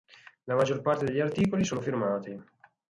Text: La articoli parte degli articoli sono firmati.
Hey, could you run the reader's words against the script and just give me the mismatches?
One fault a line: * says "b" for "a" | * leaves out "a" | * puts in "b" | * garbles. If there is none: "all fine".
* says "maggior" for "articoli"